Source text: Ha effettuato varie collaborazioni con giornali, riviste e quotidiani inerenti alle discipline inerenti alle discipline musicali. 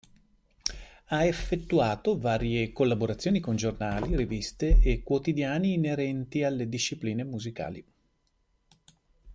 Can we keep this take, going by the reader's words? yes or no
no